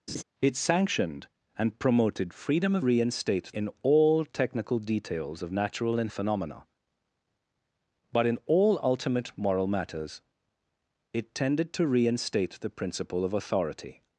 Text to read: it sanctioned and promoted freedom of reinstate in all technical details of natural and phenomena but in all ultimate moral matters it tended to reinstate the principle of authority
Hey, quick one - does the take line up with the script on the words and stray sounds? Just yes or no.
no